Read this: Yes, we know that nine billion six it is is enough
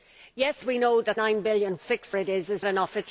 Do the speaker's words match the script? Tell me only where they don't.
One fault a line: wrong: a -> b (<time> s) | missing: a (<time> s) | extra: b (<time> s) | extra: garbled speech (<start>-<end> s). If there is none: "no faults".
no faults